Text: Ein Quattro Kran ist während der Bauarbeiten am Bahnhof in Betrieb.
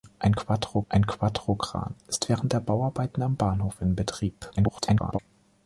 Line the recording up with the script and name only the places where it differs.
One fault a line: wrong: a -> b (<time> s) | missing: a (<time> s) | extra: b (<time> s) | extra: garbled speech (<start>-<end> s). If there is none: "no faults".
extra: ein Quattro (0.9 s)
extra: garbled speech (4.6-5.2 s)